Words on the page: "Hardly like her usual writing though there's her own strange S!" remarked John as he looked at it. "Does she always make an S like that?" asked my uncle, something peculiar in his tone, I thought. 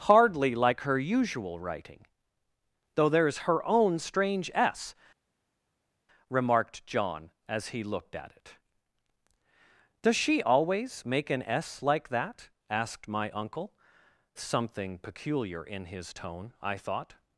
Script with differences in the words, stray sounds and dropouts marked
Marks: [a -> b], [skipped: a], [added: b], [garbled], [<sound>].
"Hardly like her usual writing though there's her own strange S!" remarked John as he looked at it. "Does she always make an S like that?" asked my uncle, something peculiar in his tone, I thought.